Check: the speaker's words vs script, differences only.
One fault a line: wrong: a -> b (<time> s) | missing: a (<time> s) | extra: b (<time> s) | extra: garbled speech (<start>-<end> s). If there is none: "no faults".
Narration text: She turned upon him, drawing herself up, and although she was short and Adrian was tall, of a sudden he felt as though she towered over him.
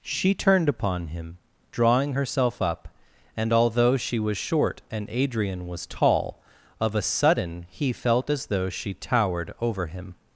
no faults